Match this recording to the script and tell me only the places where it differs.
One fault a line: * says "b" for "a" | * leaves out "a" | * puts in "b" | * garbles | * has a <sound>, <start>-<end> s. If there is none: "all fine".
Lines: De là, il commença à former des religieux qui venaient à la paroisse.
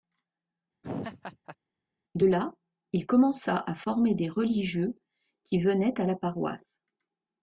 * has a laugh, 0.8-1.6 s